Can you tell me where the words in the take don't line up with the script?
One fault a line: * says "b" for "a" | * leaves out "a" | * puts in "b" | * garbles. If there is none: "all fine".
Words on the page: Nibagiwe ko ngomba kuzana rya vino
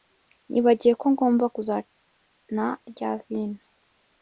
all fine